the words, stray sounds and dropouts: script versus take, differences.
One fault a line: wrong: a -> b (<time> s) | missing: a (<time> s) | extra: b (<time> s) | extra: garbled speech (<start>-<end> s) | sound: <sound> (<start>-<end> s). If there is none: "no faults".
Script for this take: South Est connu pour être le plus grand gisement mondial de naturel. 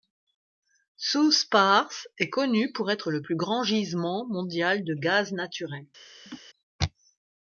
extra: Pars (1.5 s)
extra: gaz (4.9 s)
sound: laugh (6.3-6.4 s)